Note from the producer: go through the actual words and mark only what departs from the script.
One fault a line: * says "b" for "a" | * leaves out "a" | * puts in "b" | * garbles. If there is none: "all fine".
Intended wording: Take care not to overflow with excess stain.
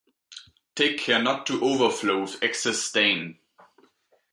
all fine